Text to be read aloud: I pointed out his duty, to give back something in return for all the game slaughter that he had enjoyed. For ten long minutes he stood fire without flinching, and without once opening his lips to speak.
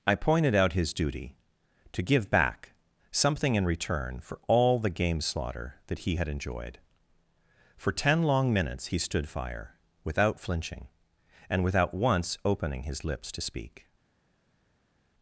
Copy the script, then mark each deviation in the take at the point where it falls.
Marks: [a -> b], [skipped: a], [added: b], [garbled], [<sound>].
I pointed out his duty, to give back something in return for all the game slaughter that he had enjoyed. For ten long minutes he stood fire without flinching, and without once opening his lips to speak.